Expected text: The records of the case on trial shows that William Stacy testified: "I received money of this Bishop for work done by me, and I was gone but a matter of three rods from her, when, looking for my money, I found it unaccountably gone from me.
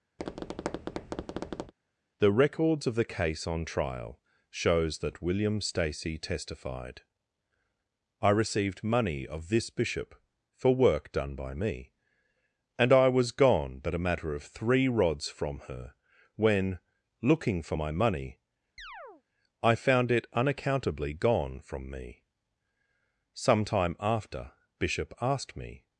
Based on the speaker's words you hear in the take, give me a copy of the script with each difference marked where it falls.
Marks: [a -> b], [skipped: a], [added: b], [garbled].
The records of the case on trial shows that William Stacy testified: "I received money of this Bishop for work done by me, and I was gone but a matter of three rods from her, when, looking for my money, I found it unaccountably gone from me. [added: Some time after Bishop asked me]